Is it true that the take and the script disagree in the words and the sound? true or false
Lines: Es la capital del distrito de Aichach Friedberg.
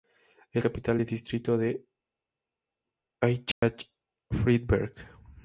true